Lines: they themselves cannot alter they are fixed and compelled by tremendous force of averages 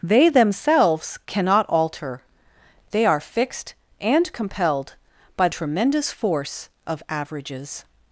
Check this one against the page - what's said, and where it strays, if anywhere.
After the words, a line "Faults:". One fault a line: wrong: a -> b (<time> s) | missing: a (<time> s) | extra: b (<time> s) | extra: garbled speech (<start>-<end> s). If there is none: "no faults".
they themselves cannot alter they are fixed and compelled by tremendous force of averages
Faults:
no faults